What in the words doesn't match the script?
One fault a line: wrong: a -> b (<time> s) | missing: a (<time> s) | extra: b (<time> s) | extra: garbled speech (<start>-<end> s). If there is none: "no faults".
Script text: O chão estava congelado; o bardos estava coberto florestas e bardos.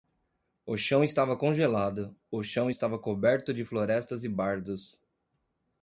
wrong: bardos -> chão (2.4 s)
extra: de (3.5 s)